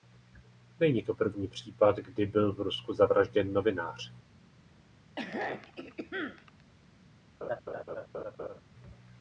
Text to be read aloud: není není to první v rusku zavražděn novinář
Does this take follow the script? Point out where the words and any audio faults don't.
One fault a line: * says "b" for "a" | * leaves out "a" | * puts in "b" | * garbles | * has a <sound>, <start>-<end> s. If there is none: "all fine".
* leaves out "není"
* puts in "případ kdy byl"
* has a throat clearing, 5.2-6.6 s
* has a laugh, 7.4-8.6 s